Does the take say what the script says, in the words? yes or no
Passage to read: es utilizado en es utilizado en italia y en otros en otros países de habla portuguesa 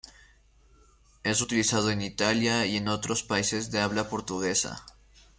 no